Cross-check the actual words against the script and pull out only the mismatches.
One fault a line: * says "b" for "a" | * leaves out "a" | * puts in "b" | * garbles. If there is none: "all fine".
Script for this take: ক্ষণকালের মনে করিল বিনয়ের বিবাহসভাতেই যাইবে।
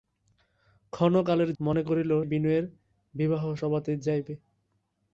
all fine